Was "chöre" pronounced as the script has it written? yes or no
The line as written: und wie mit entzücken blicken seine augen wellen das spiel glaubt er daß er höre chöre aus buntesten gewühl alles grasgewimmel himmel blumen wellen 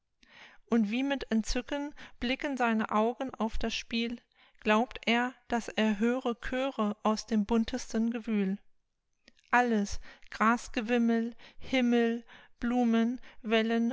yes